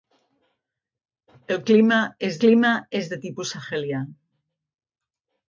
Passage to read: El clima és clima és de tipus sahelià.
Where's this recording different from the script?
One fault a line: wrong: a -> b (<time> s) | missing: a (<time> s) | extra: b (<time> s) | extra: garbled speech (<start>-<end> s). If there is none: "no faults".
no faults